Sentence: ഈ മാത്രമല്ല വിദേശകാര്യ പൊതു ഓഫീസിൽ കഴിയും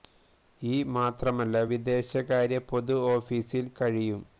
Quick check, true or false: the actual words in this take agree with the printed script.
true